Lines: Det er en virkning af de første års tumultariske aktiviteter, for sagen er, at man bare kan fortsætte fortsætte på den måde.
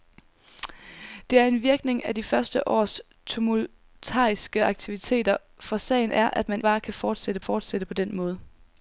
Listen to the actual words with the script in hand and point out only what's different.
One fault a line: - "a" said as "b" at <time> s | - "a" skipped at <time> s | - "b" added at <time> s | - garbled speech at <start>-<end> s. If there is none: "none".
none